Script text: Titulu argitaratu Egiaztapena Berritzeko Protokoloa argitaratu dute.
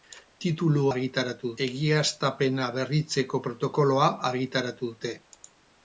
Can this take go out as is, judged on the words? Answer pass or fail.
pass